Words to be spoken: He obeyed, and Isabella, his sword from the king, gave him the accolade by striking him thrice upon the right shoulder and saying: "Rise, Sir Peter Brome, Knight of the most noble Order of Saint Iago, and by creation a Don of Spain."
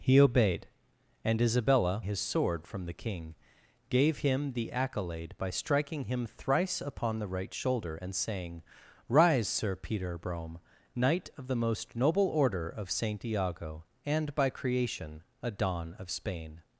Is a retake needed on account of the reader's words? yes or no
no